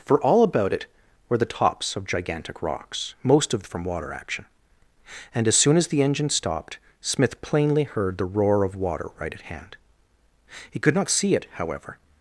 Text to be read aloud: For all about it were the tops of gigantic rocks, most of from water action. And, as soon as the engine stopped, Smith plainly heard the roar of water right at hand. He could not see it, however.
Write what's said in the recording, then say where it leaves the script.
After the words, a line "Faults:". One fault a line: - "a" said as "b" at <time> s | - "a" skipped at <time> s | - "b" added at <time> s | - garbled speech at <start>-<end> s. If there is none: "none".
For all about it were the tops of gigantic rocks, most of from water action. And, as soon as the engine stopped, Smith plainly heard the roar of water right at hand. He could not see it, however.
Faults:
none